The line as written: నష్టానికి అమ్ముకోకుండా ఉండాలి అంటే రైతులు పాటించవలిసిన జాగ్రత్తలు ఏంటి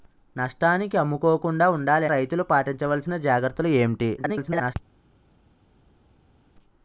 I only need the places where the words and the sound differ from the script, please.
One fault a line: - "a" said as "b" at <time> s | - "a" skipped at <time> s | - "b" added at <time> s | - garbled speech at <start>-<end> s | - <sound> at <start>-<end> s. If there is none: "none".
- "అంటే" skipped at 2.0 s
- garbled speech at 4.2-4.7 s